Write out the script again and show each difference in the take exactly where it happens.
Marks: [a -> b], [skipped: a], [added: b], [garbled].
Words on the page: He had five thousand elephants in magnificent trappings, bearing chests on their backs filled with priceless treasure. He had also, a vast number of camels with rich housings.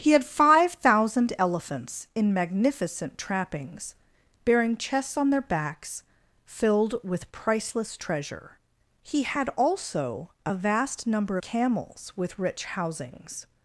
He had five thousand elephants in magnificent trappings, bearing chests on their backs filled with priceless treasure. He had also, a vast number [skipped: of] camels with rich housings.